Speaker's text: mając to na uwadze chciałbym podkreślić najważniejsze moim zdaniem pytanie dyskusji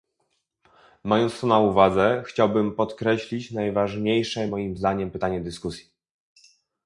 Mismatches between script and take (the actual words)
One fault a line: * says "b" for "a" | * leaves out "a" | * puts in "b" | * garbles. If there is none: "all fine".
all fine